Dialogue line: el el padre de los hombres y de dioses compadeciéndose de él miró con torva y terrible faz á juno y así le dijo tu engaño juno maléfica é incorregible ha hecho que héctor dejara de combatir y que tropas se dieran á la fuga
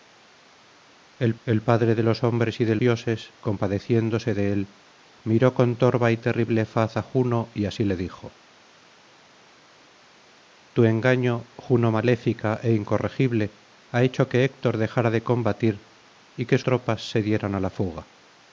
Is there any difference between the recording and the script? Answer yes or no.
no